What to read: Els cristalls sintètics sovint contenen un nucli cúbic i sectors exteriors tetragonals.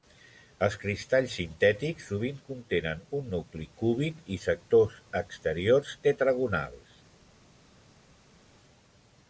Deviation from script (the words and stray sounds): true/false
false